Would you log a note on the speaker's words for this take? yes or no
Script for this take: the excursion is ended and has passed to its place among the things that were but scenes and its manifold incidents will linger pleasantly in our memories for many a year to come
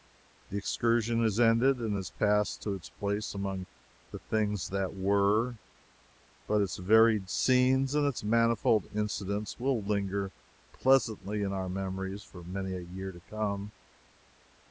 yes